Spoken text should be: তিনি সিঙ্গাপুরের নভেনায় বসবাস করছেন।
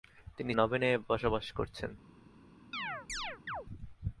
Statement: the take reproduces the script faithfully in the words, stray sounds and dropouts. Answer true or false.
false